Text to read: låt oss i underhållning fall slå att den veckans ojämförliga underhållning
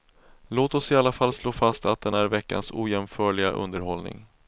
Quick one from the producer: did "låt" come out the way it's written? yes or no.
yes